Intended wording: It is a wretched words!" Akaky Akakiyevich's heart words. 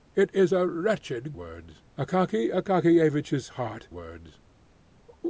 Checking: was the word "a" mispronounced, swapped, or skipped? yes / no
no